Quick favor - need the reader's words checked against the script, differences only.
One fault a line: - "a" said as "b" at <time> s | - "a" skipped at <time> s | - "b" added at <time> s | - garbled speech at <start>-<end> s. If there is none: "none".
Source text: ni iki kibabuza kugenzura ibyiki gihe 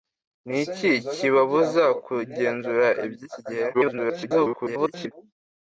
- garbled speech at 3.7-5.1 s